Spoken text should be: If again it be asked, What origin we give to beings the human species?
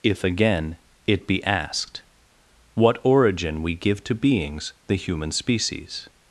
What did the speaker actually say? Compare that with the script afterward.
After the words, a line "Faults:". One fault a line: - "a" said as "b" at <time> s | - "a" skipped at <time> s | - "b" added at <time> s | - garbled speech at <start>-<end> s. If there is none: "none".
If again it be asked, What origin we give to beings the human species?
Faults:
none